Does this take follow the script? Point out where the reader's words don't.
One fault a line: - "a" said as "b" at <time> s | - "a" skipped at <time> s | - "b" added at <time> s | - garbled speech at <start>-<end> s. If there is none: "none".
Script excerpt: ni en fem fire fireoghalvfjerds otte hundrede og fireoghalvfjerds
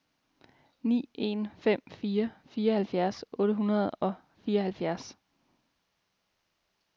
none